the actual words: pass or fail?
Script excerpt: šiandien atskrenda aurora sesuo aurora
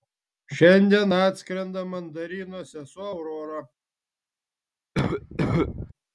fail